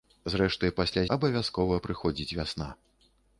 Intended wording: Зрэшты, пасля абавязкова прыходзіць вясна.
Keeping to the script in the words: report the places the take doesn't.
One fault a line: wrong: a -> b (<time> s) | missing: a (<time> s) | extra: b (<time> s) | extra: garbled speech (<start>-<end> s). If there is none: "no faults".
no faults